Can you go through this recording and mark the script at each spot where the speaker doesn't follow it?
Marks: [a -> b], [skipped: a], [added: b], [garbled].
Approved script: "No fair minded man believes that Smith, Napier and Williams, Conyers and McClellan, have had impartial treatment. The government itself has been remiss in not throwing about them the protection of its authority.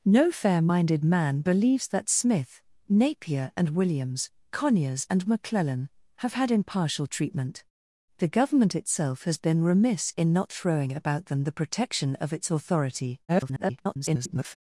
"No fair minded man believes that Smith, Napier and Williams, Conyers and McClellan, have had impartial treatment. The government itself has been remiss in not throwing about them the protection of its authority. [garbled]